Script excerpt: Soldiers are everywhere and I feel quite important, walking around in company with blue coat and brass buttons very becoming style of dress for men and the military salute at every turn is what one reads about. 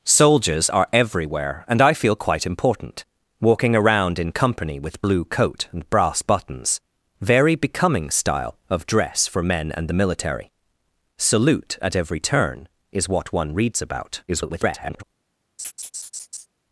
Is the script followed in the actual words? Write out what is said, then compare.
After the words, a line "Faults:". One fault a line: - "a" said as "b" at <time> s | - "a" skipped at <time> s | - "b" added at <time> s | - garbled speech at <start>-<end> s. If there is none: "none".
Soldiers are everywhere and I feel quite important, walking around in company with blue coat and brass buttons very becoming style of dress for men and the military salute at every turn is what one reads about. [garbled]
Faults:
- garbled speech at 14.3-15.0 s